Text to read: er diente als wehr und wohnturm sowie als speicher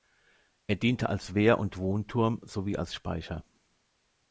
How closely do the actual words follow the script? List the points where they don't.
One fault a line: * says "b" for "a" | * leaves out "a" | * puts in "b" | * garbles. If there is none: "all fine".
all fine